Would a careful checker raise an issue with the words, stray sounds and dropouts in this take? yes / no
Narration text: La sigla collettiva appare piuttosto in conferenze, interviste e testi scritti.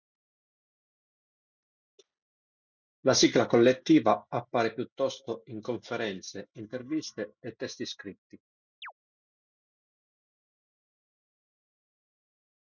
yes